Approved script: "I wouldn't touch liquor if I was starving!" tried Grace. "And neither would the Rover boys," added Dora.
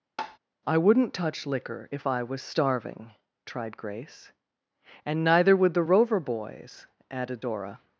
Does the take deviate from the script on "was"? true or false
false